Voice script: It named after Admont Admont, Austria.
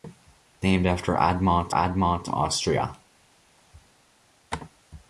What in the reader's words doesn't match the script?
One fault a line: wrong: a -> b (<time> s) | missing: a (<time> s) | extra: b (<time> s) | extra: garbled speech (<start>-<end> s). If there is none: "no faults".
no faults